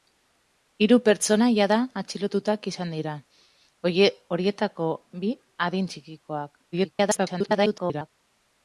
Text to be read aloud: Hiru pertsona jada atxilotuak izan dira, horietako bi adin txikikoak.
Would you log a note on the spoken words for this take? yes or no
yes